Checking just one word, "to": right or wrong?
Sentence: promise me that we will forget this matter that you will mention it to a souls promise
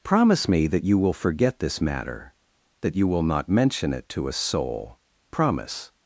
right